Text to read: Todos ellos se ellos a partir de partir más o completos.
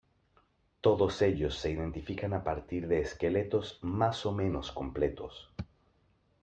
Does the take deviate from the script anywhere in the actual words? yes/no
yes